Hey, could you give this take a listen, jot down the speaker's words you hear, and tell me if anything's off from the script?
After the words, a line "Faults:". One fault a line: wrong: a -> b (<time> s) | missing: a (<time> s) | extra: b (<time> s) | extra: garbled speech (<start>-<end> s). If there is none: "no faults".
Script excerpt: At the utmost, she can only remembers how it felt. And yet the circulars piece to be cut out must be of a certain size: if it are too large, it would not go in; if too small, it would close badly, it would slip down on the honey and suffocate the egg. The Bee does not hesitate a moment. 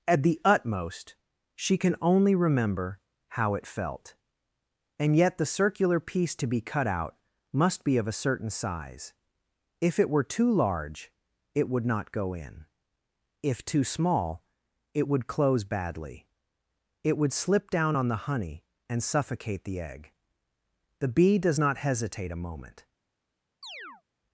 At the utmost, she can only remember how it felt. And yet the circular piece to be cut out must be of a certain size: if it were too large, it would not go in; if too small, it would close badly, it would slip down on the honey and suffocate the egg. The Bee does not hesitate a moment.
Faults:
wrong: remembers -> remember (2.3 s)
wrong: circulars -> circular (5.5 s)
wrong: are -> were (10.1 s)